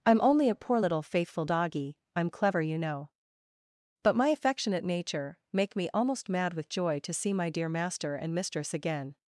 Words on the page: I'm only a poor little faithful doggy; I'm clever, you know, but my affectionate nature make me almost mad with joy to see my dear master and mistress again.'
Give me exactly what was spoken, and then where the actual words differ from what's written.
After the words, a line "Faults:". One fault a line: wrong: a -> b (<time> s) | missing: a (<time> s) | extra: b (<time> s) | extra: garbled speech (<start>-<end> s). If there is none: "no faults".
I'm only a poor little faithful doggy; I'm clever, you know, but my affectionate nature make me almost mad with joy to see my dear master and mistress again.'
Faults:
no faults